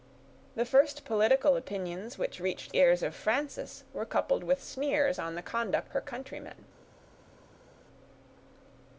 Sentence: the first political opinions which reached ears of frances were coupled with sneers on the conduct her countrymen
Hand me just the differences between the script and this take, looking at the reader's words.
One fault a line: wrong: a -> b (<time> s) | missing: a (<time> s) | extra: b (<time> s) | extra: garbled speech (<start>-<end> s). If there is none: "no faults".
no faults